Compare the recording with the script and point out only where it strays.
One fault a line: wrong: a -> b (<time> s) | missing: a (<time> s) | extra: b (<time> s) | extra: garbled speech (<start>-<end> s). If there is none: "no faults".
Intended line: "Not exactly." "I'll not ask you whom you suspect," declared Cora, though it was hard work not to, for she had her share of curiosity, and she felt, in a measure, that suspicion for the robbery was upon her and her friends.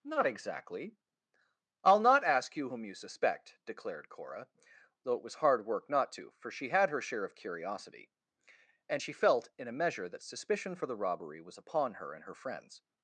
no faults